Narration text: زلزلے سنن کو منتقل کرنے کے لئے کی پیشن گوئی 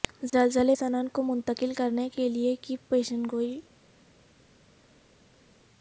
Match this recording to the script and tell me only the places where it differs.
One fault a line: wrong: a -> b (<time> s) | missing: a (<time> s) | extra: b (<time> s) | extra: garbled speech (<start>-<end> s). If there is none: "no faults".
no faults